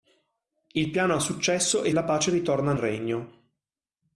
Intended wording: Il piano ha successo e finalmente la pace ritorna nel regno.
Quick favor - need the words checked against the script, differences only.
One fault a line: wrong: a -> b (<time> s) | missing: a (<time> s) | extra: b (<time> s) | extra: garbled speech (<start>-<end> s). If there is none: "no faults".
missing: finalmente (1.9 s)
missing: nel (2.7 s)